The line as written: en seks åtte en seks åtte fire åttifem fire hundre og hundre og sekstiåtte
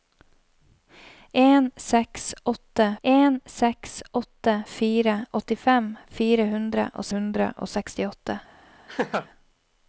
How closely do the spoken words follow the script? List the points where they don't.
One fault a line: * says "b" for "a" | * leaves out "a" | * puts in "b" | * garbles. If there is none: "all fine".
all fine